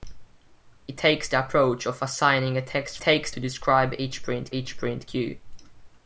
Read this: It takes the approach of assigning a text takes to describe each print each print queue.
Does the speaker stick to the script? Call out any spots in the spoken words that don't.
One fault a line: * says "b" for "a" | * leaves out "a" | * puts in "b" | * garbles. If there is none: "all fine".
all fine